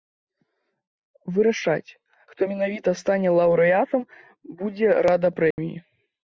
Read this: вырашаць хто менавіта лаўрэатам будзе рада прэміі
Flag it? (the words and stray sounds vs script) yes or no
yes